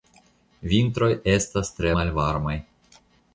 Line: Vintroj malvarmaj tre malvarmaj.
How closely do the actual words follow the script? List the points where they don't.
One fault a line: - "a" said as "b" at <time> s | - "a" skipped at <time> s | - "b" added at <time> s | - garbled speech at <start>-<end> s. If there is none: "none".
- "malvarmaj" said as "estas" at 1.3 s